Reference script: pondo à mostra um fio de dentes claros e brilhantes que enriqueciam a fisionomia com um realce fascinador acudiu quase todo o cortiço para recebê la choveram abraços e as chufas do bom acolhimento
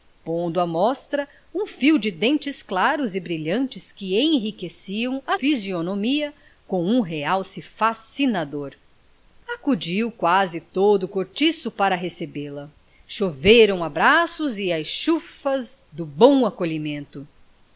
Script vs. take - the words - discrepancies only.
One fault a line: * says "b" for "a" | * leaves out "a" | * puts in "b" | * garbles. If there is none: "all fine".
all fine